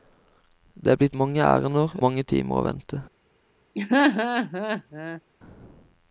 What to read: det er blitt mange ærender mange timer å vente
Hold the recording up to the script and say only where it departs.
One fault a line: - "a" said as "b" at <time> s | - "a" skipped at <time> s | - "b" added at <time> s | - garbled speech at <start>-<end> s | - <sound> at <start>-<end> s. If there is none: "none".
- laugh at 3.7-5.2 s